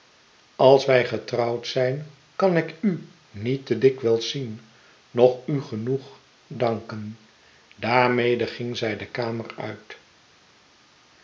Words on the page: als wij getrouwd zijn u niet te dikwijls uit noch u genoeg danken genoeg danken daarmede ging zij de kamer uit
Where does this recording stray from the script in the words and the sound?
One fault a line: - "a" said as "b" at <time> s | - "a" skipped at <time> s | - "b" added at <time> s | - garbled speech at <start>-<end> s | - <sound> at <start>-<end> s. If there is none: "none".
- "kan ik" added at 2.4 s
- "uit" said as "zien" at 4.3 s
- "genoeg danken" skipped at 7.2 s